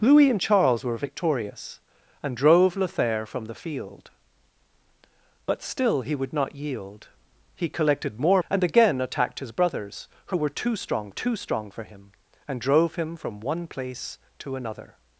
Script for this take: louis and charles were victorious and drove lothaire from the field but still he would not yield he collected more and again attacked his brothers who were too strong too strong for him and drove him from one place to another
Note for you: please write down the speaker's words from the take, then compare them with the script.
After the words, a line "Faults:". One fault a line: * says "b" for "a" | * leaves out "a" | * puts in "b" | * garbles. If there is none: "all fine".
louis and charles were victorious and drove lothaire from the field but still he would not yield he collected more and again attacked his brothers who were too strong too strong for him and drove him from one place to another
Faults:
all fine